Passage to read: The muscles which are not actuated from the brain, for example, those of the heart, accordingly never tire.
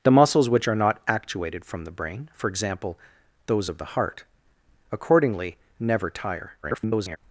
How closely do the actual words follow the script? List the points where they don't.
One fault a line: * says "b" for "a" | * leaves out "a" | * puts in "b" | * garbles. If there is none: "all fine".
* garbles